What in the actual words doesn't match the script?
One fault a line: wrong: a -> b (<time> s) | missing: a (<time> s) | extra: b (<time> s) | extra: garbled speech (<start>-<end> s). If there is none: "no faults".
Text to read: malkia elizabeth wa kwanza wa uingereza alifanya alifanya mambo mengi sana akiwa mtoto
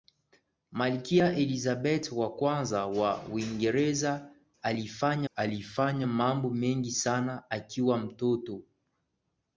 no faults